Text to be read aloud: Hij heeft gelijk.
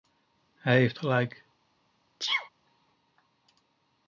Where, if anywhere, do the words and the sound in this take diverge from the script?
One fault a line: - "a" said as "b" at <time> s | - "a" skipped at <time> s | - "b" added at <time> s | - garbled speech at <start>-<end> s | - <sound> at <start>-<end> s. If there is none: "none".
- sneeze at 2.2-2.5 s